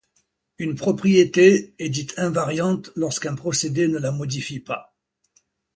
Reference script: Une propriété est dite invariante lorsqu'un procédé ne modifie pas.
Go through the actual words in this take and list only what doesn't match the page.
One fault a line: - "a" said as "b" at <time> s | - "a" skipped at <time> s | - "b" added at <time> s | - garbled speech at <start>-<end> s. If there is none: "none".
- "la" added at 4.0 s